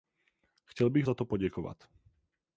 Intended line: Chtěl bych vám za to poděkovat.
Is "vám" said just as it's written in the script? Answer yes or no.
no